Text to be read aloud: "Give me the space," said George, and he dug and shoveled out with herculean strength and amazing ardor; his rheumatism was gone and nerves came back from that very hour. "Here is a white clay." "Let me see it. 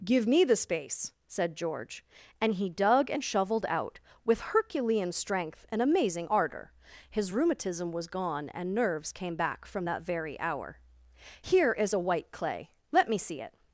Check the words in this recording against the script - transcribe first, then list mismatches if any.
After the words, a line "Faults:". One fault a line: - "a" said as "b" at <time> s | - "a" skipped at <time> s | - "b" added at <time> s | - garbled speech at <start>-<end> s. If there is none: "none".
"Give me the space," said George, and he dug and shoveled out with herculean strength and amazing ardor; his rheumatism was gone and nerves came back from that very hour. "Here is a white clay." "Let me see it.
Faults:
none